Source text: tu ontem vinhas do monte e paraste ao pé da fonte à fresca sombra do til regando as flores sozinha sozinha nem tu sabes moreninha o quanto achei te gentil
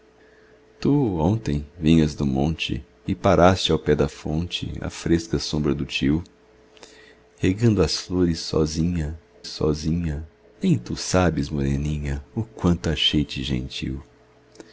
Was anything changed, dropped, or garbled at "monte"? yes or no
no